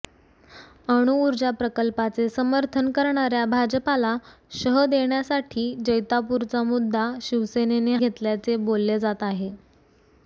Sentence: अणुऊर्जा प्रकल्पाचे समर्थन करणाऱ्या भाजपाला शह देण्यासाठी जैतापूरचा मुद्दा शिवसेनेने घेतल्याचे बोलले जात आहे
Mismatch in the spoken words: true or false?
false